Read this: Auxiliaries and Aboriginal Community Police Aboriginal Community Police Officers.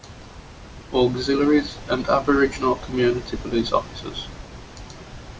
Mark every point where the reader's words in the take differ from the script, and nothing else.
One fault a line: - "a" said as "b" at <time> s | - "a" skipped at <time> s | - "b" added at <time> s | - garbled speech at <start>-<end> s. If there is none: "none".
- "Aboriginal Community Police" skipped at 3.7 s